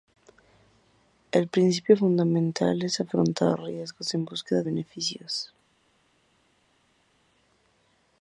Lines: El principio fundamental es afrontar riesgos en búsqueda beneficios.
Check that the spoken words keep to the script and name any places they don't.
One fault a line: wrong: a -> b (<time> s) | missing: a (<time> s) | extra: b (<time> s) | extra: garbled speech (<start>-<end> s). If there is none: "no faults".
no faults